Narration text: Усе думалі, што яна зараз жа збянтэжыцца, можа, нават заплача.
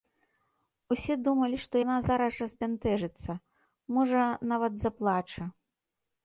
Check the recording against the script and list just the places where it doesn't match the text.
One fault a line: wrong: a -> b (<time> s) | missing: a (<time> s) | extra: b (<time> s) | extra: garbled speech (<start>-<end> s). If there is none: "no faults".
no faults